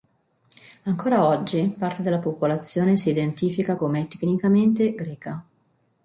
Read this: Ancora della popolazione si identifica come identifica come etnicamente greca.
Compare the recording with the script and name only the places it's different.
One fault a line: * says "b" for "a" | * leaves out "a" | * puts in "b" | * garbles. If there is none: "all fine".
* puts in "oggi parte"
* leaves out "identifica come"